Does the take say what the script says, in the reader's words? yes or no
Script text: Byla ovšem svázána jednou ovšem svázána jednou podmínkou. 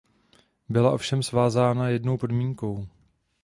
no